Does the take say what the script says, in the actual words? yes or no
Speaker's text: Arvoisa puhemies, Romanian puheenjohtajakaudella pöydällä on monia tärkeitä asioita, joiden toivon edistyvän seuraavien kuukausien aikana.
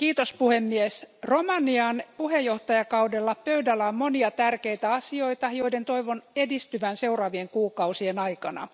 yes